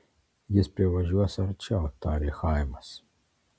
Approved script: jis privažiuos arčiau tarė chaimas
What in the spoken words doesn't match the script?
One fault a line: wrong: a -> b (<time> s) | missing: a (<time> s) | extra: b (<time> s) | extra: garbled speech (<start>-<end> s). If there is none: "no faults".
no faults